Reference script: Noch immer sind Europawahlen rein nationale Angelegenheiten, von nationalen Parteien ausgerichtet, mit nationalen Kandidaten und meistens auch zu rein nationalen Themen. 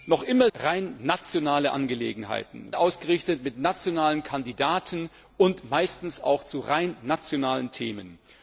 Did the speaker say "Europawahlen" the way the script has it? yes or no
no